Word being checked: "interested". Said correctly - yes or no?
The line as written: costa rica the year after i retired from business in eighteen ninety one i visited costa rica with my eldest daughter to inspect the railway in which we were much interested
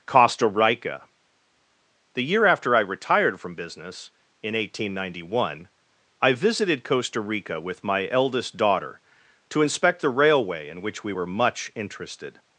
yes